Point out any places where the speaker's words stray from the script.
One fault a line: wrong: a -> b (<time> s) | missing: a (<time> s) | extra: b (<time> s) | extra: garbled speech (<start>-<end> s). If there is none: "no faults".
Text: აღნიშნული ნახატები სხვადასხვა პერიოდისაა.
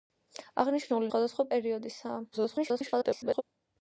missing: ნახატები (1.1 s)
extra: garbled speech (2.3-3.4 s)